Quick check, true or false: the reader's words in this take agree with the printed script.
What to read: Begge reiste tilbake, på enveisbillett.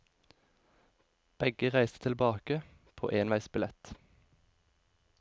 true